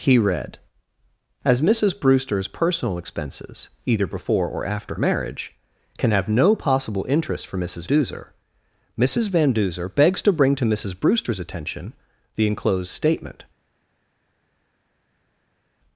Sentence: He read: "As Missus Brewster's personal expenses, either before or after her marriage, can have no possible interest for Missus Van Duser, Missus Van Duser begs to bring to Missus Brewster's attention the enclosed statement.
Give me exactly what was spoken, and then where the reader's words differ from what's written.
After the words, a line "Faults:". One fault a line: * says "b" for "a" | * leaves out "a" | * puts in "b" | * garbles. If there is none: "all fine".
He read: "As Missus Brewster's personal expenses, either before or after marriage, can have no possible interest for Missus Duser, Missus Van Duser begs to bring to Missus Brewster's attention the enclosed statement.
Faults:
* leaves out "her"
* leaves out "Van"